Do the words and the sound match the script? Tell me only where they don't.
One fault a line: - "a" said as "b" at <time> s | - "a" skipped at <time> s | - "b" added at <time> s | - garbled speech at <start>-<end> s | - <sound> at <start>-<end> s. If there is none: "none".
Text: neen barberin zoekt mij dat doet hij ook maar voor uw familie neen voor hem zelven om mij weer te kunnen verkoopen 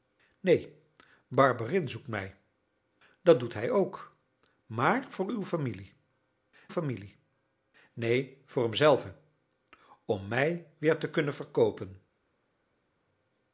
- "familie" added at 6.7 s